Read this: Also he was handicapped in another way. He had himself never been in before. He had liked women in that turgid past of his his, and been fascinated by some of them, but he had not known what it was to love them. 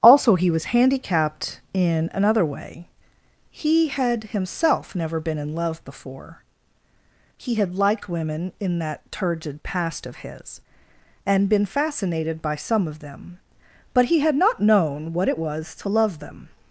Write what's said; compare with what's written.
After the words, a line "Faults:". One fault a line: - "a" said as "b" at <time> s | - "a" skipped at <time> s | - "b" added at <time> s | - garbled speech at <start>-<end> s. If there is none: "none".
Also he was handicapped in another way. He had himself never been in love before. He had liked women in that turgid past of his, and been fascinated by some of them, but he had not known what it was to love them.
Faults:
- "love" added at 5.5 s
- "his" skipped at 10.6 s